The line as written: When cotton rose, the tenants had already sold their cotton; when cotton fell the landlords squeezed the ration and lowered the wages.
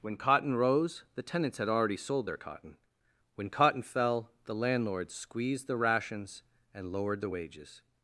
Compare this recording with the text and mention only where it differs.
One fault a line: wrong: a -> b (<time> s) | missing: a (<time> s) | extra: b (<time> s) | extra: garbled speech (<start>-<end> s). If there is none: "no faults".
wrong: ration -> rations (5.8 s)